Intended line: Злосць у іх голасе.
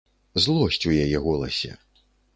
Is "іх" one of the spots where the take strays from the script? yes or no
yes